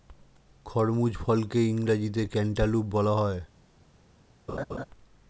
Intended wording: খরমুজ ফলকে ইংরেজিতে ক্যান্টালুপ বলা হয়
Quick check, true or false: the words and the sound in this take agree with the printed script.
false